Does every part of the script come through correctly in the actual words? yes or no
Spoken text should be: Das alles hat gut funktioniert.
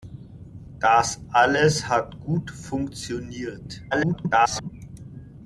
no